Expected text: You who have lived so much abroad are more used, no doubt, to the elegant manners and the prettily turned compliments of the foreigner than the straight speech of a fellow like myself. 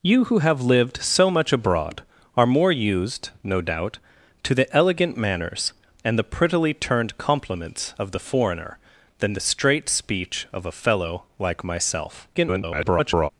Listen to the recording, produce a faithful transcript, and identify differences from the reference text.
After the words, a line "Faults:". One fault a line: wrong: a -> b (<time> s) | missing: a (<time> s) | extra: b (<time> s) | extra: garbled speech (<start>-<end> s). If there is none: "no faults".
You who have lived so much abroad are more used, no doubt, to the elegant manners and the prettily turned compliments of the foreigner than the straight speech of a fellow like myself. [garbled]
Faults:
extra: garbled speech (12.3-13.3 s)